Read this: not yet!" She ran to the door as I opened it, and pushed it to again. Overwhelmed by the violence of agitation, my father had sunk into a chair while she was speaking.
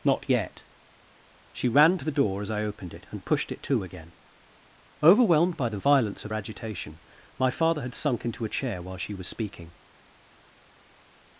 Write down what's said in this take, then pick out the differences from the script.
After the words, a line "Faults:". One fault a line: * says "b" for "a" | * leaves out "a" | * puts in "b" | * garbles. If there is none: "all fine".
not yet!" She ran to the door as I opened it, and pushed it to again. Overwhelmed by the violence of agitation, my father had sunk into a chair while she was speaking.
Faults:
all fine